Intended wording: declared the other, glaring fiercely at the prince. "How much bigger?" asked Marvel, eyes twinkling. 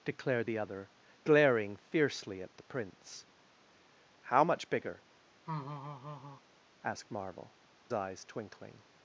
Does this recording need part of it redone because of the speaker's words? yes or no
no